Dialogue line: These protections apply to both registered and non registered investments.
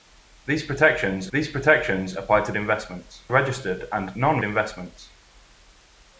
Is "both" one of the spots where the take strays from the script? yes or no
yes